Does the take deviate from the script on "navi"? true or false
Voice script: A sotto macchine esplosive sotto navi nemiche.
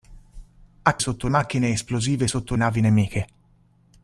false